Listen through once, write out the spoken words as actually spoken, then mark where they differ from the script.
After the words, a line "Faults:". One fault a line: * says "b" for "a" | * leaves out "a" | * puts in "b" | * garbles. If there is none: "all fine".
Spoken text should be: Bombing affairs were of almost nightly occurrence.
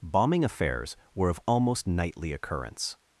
Bombing affairs were of almost nightly occurrence.
Faults:
all fine